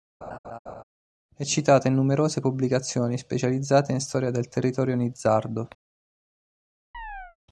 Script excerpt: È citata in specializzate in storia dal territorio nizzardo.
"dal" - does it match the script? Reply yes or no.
no